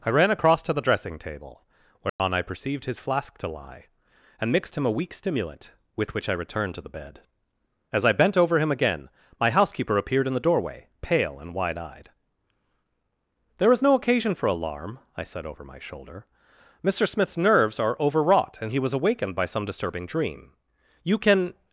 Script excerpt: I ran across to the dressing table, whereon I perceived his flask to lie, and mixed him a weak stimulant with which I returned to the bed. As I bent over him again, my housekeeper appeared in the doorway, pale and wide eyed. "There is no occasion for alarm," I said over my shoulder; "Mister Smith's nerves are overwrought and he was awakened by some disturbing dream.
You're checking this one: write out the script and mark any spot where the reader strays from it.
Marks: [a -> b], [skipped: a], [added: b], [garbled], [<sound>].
I ran across to the dressing table, whereon [dropout] I perceived his flask to lie, and mixed him a weak stimulant with which I returned to the bed. As I bent over him again, my housekeeper appeared in the doorway, pale and wide eyed. "There is no occasion for alarm," I said over my shoulder; "Mister Smith's nerves are overwrought and he was awakened by some disturbing dream. [added: You can]